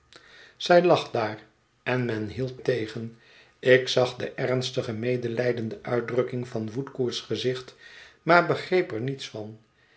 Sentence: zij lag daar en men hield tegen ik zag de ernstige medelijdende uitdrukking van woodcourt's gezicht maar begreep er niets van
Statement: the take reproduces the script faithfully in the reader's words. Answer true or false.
true